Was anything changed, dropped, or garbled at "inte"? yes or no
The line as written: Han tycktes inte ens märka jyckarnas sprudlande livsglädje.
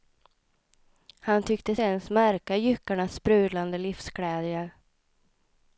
yes